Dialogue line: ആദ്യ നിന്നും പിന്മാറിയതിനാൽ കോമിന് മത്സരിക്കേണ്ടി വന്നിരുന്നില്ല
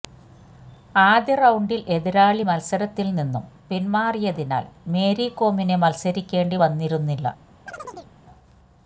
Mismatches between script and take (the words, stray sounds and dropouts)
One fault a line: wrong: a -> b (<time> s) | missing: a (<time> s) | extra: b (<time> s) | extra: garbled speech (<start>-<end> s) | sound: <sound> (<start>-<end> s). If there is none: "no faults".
extra: റൌണ്ടിൽ എതിരാളി മത്സരത്തിൽ (1.4 s)
extra: മേരി (4.9 s)
sound: chirp (7.7-8.1 s)